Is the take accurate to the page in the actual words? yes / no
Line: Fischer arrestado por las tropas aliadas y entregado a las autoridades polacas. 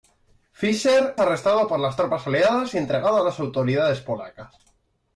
yes